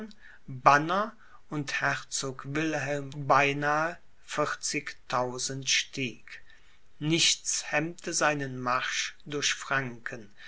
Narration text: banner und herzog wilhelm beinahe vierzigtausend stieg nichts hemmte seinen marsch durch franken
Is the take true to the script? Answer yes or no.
yes